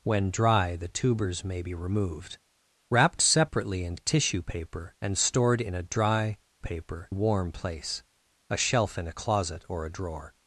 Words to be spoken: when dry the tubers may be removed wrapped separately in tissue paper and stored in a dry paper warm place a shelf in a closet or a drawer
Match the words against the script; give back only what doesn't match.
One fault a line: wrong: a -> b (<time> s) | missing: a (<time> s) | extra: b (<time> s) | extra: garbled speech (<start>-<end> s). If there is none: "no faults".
no faults